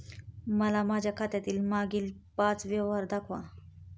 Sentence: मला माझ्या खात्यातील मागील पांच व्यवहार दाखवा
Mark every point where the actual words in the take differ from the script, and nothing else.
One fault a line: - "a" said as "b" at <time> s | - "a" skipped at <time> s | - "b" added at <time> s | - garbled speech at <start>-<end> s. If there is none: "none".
none